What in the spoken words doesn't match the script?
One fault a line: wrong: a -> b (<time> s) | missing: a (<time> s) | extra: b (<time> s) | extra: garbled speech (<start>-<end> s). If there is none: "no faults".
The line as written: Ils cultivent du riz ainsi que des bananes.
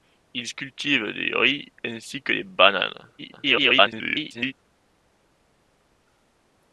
extra: garbled speech (3.2-4.5 s)